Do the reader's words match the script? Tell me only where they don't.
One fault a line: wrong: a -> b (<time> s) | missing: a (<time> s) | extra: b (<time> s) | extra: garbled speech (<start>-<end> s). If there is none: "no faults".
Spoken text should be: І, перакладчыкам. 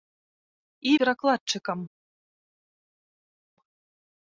no faults